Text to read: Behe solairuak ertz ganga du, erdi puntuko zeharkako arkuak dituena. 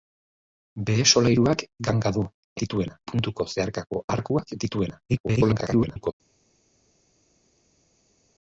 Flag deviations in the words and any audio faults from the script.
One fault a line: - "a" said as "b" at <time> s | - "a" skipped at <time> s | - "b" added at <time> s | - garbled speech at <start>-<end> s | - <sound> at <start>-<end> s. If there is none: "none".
- "ertz" skipped at 1.6 s
- "erdi" said as "dituena" at 2.6 s
- garbled speech at 5.1-6.1 s